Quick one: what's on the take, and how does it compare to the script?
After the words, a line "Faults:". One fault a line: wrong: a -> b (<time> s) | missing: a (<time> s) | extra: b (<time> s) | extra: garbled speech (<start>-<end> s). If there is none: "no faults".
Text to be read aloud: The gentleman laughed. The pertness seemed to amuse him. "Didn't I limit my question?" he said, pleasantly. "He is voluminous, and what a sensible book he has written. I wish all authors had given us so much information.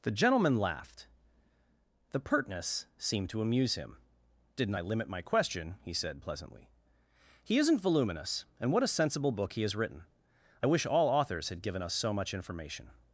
The gentleman laughed. The pertness seemed to amuse him. "Didn't I limit my question?" he said, pleasantly. "He isn't voluminous, and what a sensible book he has written. I wish all authors had given us so much information.
Faults:
wrong: is -> isn't (7.6 s)